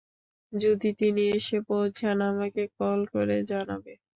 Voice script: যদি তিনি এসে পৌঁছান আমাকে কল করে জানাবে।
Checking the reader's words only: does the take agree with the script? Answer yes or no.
yes